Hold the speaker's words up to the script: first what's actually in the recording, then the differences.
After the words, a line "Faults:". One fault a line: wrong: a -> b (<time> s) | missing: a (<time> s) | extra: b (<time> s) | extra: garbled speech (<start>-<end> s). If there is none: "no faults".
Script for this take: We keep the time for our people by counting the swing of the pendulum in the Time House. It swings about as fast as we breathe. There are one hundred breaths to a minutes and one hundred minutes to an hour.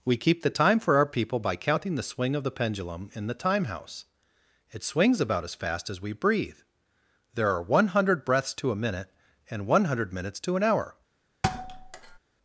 We keep the time for our people by counting the swing of the pendulum in the Time House. It swings about as fast as we breathe. There are one hundred breaths to a minute and one hundred minutes to an hour.
Faults:
wrong: minutes -> minute (8.8 s)